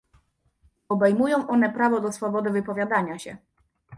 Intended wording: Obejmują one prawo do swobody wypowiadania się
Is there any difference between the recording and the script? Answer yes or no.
no